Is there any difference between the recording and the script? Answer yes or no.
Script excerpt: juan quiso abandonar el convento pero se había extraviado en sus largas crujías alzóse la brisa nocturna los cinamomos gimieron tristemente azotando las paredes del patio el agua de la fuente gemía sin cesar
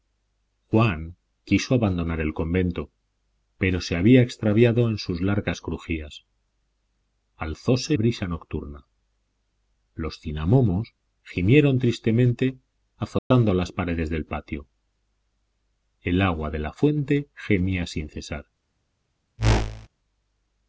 yes